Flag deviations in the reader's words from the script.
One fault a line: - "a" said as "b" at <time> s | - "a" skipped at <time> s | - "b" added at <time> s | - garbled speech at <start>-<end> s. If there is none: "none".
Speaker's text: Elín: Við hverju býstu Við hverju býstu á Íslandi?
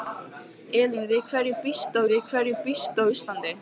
none